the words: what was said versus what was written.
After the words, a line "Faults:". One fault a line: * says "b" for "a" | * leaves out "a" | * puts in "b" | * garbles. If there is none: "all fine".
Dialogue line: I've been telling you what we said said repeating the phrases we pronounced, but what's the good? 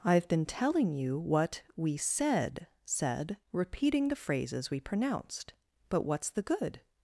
I've been telling you what we said said repeating the phrases we pronounced, but what's the good?
Faults:
all fine